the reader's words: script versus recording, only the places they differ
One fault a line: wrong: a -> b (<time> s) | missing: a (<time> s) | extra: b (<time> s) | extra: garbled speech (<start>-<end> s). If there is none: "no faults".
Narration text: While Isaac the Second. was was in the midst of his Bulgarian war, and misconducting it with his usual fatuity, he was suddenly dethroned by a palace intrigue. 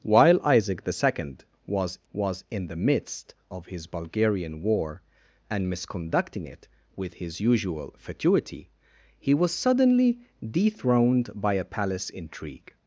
no faults